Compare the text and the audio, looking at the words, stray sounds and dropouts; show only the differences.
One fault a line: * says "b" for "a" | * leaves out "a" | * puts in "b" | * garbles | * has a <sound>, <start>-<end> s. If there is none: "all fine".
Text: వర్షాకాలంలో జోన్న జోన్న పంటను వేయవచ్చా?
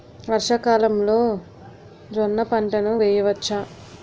* leaves out "జోన్న"